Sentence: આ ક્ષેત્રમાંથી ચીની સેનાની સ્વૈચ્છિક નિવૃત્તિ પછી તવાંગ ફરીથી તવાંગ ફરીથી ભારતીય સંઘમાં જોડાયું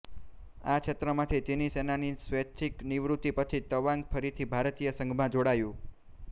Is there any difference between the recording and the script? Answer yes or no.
yes